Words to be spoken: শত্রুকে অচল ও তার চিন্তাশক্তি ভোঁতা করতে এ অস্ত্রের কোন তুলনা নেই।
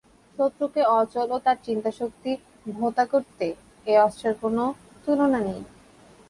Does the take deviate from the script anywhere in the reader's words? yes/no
no